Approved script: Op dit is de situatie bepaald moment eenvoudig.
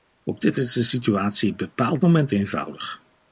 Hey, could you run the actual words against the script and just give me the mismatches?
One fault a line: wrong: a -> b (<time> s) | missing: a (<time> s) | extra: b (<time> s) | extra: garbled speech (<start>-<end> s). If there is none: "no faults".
no faults